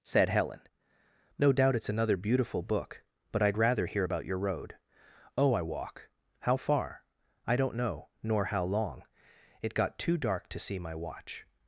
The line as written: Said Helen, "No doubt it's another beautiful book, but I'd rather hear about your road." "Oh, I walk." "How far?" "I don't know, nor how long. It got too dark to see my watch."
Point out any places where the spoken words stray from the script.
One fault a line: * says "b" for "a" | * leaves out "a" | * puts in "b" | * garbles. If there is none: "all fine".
all fine